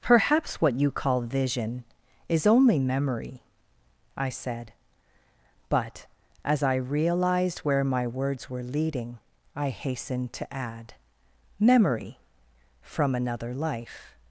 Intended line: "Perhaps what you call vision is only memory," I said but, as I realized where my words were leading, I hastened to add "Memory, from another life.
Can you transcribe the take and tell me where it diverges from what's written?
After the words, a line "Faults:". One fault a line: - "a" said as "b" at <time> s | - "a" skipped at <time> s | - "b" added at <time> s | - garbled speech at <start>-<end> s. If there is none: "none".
"Perhaps what you call vision is only memory," I said but, as I realized where my words were leading, I hastened to add "Memory, from another life.
Faults:
none